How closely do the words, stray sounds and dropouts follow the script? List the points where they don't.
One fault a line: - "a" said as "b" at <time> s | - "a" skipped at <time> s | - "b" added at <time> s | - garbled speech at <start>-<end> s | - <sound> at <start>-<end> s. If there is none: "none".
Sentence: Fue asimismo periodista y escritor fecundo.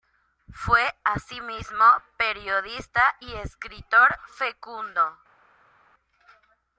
none